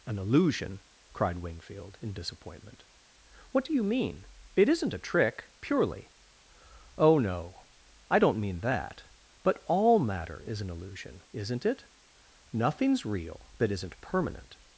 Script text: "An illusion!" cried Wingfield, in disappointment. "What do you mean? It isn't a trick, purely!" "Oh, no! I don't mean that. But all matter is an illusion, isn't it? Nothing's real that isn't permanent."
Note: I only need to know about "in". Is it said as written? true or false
true